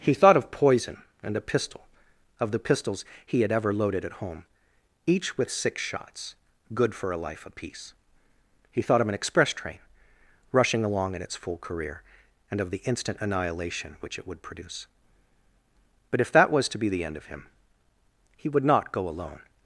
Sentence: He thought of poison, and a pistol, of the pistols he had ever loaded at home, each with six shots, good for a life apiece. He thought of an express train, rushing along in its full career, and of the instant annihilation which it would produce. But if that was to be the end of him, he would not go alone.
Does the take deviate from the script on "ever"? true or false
false